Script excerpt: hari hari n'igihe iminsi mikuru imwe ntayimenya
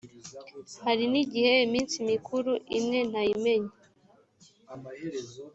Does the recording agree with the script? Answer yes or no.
no